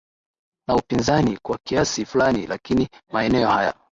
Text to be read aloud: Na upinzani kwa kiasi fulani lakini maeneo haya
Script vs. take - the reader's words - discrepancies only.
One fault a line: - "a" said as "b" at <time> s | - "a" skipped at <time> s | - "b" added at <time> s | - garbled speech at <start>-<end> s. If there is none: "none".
none